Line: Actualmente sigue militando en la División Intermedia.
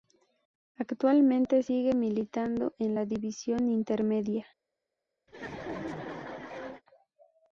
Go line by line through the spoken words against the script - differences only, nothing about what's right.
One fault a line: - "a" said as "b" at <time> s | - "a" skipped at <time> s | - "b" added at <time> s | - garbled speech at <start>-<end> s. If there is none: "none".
none